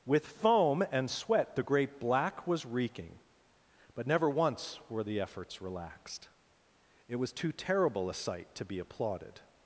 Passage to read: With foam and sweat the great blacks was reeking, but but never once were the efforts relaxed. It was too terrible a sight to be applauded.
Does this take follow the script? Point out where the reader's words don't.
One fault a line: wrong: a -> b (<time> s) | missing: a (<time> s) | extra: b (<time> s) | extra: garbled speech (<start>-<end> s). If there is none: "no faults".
wrong: blacks -> black (2.0 s)
missing: but (4.1 s)